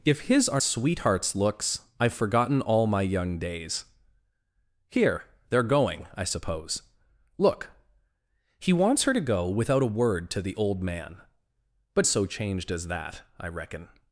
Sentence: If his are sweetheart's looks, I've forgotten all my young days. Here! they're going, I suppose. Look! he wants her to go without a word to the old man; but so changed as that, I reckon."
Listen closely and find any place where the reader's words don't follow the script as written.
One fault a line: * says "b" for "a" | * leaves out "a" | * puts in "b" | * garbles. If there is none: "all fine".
all fine